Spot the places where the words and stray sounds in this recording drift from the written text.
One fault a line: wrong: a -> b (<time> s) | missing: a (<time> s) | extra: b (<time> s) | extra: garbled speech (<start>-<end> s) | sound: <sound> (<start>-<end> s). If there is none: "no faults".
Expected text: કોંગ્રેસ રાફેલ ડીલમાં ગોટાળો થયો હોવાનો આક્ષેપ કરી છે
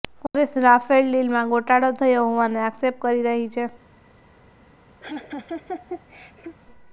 extra: રહી (3.3 s)
sound: laugh (5.0-6.6 s)